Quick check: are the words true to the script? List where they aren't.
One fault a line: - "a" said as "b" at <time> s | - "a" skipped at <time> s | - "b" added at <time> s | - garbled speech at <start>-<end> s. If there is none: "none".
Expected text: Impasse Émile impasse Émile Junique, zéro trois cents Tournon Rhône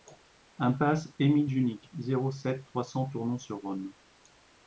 - "impasse Émile" skipped at 1.5 s
- "sept" added at 2.3 s
- "sur" added at 3.4 s